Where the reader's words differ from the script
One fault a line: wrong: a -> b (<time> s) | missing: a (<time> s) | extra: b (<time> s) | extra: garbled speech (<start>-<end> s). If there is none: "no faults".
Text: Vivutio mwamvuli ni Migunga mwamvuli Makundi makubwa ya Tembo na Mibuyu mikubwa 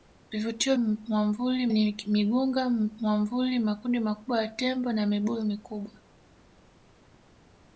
no faults